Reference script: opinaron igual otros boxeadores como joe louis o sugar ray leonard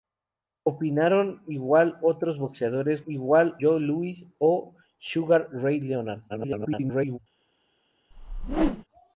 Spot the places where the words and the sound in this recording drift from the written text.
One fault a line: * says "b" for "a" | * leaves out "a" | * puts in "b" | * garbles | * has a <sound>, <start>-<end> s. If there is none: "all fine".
* says "igual" for "como"
* garbles
* has a whoosh, 8.1-8.8 s